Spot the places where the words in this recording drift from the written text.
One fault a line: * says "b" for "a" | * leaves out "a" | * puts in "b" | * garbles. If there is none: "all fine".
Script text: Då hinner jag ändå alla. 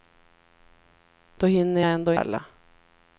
all fine